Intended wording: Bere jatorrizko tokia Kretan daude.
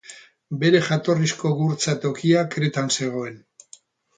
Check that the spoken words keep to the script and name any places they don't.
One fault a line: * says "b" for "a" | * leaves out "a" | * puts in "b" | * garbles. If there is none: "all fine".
* puts in "gurtza"
* says "zegoen" for "daude"